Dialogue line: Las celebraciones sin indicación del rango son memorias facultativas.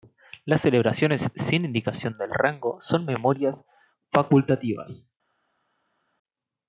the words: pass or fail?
pass